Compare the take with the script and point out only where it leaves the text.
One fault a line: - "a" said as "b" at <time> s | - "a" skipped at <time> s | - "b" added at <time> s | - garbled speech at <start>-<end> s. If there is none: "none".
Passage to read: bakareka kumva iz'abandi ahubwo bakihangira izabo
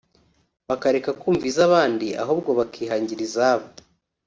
none